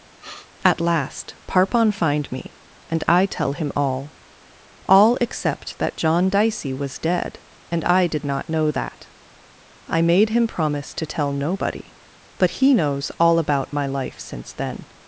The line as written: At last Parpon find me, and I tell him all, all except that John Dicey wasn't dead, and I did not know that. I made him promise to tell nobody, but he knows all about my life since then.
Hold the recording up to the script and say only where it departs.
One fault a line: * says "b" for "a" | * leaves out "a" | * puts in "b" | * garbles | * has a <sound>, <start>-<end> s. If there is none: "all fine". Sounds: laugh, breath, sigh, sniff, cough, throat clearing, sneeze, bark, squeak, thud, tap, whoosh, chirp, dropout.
* has a sniff, 0.2-0.5 s
* says "was" for "wasn't"